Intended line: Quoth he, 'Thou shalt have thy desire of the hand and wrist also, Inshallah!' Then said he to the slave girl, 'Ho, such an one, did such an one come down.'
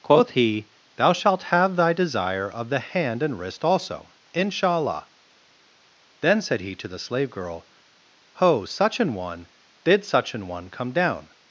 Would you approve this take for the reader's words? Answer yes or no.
yes